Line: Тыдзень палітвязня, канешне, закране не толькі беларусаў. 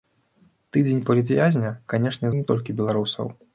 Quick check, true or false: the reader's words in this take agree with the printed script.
false